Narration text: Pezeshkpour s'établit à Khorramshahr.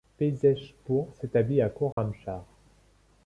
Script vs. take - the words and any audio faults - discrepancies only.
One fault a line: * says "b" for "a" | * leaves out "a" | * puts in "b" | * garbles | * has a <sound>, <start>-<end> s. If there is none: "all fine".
* has a dropout, 1.9-2.0 s